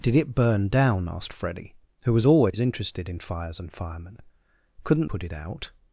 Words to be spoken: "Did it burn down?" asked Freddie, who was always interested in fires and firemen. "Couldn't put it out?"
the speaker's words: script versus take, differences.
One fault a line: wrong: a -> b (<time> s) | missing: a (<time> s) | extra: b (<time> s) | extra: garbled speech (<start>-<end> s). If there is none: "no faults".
no faults